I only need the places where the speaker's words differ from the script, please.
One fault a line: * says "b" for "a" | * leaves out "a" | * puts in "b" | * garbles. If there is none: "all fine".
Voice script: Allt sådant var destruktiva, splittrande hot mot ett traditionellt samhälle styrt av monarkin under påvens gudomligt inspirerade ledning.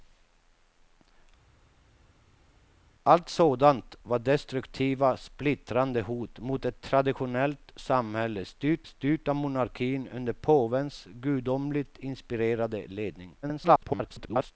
* puts in "styrt"
* garbles